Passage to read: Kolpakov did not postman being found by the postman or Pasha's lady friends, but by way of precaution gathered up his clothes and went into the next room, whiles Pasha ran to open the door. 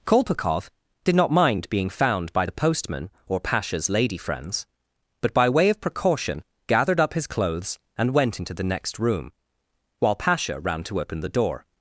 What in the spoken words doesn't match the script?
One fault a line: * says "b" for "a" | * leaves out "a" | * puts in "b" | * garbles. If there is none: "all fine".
* says "mind" for "postman"
* says "while" for "whiles"